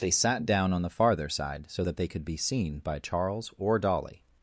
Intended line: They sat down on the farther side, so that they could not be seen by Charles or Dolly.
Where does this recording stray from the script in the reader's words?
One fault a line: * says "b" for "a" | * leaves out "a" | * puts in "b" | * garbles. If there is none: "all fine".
* leaves out "not"